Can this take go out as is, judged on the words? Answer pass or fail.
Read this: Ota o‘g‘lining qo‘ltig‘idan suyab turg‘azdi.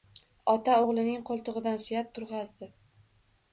pass